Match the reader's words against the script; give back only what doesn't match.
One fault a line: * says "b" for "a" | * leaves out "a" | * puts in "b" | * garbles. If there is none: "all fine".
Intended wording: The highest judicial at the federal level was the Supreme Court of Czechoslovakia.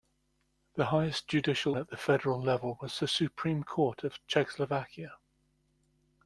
all fine